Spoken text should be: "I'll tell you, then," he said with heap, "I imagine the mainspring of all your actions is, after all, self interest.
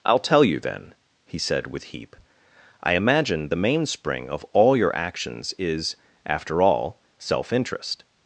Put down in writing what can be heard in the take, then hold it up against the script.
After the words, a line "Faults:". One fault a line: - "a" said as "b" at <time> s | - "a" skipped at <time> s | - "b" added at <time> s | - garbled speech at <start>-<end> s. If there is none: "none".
"I'll tell you, then," he said with heap, "I imagine the mainspring of all your actions is, after all, self interest.
Faults:
none